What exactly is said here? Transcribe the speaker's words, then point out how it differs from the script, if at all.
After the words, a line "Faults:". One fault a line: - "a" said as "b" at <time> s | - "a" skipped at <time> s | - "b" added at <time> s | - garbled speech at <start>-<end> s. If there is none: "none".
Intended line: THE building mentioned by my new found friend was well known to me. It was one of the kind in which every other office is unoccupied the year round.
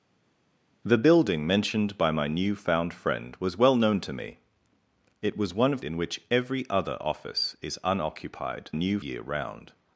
THE building mentioned by my new found friend was well known to me. It was one of in which every other office is unoccupied new year round.
Faults:
- "the kind" skipped at 5.8 s
- "the" said as "new" at 8.7 s